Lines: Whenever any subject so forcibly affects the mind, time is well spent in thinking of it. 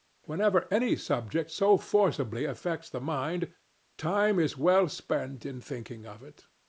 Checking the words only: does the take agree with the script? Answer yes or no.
yes